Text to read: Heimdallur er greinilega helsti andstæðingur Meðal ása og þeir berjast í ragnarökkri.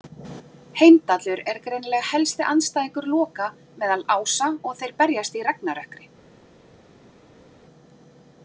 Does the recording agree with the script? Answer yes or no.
no